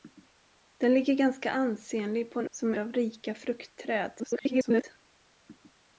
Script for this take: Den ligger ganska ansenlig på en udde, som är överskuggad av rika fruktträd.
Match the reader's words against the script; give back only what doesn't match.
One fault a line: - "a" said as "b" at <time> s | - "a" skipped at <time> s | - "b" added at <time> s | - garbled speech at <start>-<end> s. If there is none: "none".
- "udde" skipped at 2.5 s
- "överskuggad" skipped at 2.8 s
- garbled speech at 4.2-4.8 s